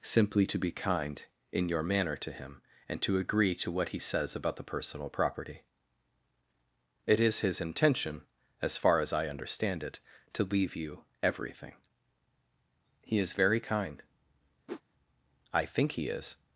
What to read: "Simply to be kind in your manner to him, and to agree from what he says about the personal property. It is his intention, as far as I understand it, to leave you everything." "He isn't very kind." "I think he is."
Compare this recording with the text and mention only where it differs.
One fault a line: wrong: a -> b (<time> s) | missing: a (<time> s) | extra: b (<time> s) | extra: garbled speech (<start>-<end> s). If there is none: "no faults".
wrong: from -> to (3.5 s)
wrong: isn't -> is (13.2 s)